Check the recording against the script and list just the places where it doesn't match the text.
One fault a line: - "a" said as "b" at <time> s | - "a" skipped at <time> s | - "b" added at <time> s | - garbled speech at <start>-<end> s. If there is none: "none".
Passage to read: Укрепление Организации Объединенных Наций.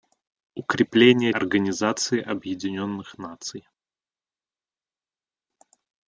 none